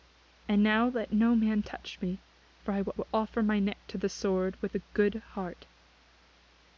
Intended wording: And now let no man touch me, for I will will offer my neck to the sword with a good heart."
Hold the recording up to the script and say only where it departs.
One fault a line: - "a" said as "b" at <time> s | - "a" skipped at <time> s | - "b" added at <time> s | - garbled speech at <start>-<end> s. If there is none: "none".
none